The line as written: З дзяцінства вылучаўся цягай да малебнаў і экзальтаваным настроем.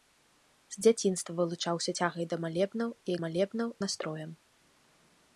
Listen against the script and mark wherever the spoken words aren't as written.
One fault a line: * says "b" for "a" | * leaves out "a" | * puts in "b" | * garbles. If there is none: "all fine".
* says "малебнаў" for "экзальтаваным"